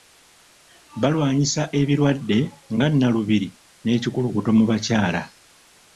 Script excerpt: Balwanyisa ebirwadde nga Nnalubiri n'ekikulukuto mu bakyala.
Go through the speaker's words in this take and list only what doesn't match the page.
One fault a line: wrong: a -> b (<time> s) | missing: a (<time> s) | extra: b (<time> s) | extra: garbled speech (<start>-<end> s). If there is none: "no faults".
no faults